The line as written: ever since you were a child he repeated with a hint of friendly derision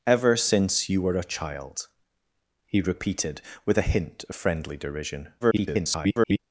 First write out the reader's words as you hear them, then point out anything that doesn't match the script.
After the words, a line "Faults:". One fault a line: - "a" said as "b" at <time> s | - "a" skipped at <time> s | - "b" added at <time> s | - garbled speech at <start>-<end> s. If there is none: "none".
ever since you were a child he repeated with a hint of friendly derision [garbled]
Faults:
- garbled speech at 5.4-6.4 s